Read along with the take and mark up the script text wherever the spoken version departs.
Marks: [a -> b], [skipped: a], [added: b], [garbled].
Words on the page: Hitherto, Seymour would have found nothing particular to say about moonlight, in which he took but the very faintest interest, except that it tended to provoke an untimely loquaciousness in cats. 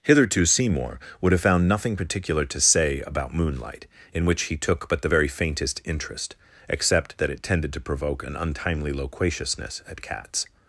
Hitherto, Seymour would have found nothing particular to say about moonlight, in which he took but the very faintest interest, except that it tended to provoke an untimely loquaciousness [in -> at] cats.